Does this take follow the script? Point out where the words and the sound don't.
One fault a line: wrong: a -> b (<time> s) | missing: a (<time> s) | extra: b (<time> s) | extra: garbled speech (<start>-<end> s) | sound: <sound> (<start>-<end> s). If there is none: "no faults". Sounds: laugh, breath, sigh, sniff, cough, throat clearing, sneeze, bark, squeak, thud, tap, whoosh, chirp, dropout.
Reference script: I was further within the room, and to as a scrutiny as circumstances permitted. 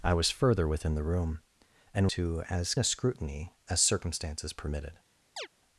sound: chirp (5.4-5.5 s)